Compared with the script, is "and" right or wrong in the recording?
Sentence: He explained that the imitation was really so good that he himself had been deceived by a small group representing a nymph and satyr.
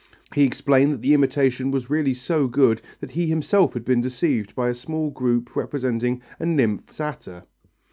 wrong